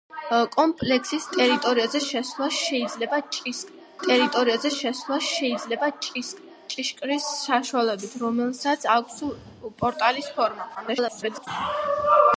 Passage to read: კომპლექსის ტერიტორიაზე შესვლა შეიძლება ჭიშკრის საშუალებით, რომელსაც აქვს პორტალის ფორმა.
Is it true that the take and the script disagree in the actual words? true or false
true